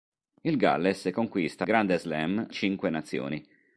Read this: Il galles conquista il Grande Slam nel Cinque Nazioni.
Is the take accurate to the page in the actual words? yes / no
no